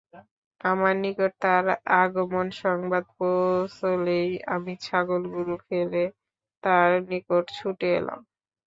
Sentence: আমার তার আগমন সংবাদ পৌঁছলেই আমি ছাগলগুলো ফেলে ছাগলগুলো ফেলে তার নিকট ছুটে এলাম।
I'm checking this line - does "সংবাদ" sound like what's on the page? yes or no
yes